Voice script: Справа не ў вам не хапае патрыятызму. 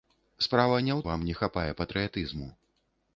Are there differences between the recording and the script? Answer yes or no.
no